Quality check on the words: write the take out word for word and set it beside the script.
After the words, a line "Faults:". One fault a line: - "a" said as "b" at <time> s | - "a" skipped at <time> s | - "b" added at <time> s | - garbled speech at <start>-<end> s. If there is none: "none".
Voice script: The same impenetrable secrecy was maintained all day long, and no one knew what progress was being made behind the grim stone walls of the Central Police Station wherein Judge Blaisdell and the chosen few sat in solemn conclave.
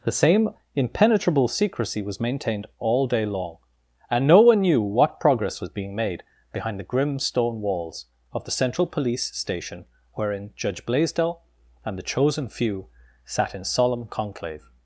The same impenetrable secrecy was maintained all day long, and no one knew what progress was being made behind the grim stone walls of the Central Police Station wherein Judge Blaisdell and the chosen few sat in solemn conclave.
Faults:
none